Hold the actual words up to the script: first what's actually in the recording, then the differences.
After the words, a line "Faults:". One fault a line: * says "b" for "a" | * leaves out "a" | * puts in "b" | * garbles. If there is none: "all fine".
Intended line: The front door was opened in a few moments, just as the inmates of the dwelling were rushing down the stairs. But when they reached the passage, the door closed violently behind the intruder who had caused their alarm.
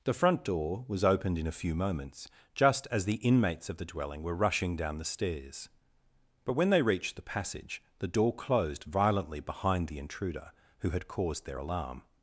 The front door was opened in a few moments, just as the inmates of the dwelling were rushing down the stairs. But when they reached the passage, the door closed violently behind the intruder who had caused their alarm.
Faults:
all fine